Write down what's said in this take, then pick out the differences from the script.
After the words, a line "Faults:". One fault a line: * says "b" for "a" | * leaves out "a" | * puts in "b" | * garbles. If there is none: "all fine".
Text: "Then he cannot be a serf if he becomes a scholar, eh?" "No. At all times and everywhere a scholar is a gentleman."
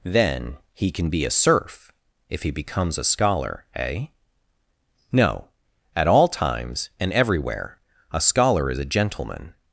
"Then he can be a serf if he becomes a scholar, eh?" "No. At all times and everywhere a scholar is a gentleman."
Faults:
* says "can" for "cannot"